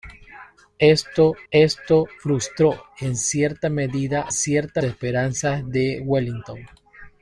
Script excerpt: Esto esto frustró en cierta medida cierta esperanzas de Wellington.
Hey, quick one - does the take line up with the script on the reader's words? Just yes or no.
yes